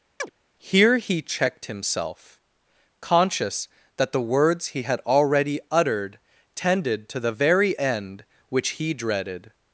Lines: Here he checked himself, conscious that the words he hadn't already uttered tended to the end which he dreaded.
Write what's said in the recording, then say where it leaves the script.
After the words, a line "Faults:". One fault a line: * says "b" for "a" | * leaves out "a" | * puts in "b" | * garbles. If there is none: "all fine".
Here he checked himself, conscious that the words he had already uttered tended to the very end which he dreaded.
Faults:
* says "had" for "hadn't"
* puts in "very"